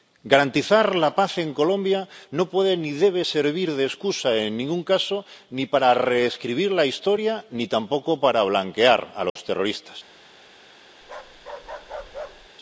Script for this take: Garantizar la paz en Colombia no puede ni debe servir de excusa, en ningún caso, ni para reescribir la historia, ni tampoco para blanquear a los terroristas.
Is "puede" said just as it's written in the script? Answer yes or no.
yes